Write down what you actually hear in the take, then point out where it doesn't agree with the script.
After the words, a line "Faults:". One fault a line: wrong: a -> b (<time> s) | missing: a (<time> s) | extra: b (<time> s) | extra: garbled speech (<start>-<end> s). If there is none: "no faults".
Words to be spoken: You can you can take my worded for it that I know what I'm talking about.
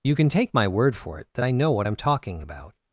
You can take my word for it that I know what I'm talking about.
Faults:
missing: you can (0.3 s)
wrong: worded -> word (0.7 s)